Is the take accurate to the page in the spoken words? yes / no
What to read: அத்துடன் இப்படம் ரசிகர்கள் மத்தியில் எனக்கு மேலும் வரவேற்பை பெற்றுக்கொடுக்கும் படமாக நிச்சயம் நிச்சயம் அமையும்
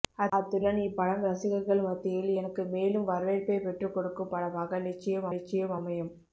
yes